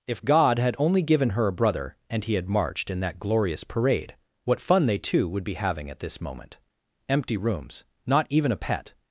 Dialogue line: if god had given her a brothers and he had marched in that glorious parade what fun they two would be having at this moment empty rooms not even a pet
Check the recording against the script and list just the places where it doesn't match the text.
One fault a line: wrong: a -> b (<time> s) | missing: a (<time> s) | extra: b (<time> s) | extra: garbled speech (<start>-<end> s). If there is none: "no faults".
extra: only (0.8 s)
wrong: brothers -> brother (1.5 s)